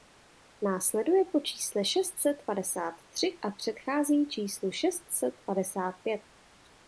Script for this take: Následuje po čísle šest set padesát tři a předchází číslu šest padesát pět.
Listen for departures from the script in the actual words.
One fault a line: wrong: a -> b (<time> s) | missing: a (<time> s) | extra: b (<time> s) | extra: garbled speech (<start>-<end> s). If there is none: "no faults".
extra: set (5.1 s)